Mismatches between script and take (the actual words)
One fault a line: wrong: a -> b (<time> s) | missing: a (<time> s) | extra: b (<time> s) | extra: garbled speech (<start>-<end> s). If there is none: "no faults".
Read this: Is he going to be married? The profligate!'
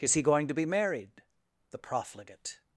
no faults